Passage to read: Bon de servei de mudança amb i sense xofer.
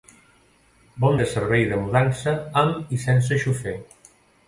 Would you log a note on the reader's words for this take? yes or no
no